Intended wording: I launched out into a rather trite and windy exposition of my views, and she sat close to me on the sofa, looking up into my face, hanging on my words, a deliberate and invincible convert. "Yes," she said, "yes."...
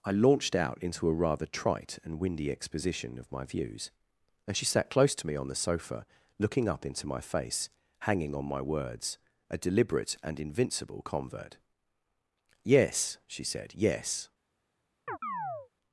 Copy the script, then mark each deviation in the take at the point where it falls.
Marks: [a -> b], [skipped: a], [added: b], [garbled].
I launched out into a rather trite and windy exposition of my views, and she sat close to me on the sofa, looking up into my face, hanging on my words, a deliberate and invincible convert. "Yes," she said, "yes."...